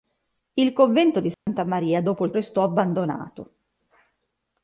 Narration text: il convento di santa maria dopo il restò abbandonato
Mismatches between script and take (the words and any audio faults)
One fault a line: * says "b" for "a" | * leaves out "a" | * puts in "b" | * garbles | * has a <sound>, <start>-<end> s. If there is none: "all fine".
* has a dropout, 1.3-1.5 s